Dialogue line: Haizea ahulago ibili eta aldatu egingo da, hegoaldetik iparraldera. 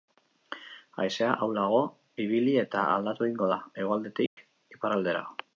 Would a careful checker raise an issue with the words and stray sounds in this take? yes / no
yes